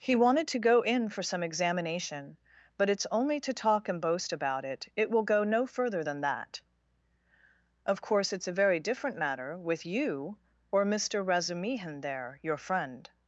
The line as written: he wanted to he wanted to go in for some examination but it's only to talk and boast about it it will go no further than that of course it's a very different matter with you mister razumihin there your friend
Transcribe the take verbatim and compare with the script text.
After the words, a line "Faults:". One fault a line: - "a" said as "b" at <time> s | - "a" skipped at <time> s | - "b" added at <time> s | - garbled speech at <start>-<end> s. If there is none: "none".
he wanted to go in for some examination but it's only to talk and boast about it it will go no further than that of course it's a very different matter with you or mister razumihin there your friend
Faults:
- "he wanted to" skipped at 0.7 s
- "or" added at 10.7 s